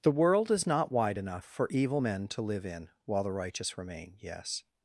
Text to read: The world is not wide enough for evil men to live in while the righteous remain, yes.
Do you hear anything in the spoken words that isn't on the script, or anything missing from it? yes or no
no